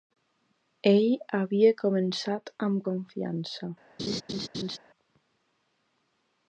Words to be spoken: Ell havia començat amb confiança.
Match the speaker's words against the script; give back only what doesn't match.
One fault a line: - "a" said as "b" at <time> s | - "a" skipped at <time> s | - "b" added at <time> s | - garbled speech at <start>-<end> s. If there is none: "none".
none